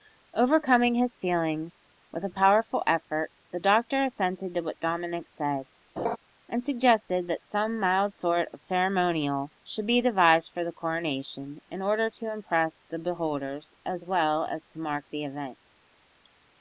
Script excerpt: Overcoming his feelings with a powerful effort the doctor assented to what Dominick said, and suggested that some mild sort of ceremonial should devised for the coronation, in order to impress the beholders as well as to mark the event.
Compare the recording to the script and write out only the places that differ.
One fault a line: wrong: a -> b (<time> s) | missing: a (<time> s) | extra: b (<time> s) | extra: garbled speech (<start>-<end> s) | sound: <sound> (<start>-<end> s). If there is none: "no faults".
sound: laugh (6.0-6.2 s)
extra: be (9.9 s)